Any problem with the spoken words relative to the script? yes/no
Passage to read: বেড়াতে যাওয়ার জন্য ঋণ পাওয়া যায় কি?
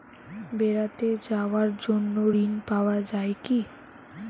no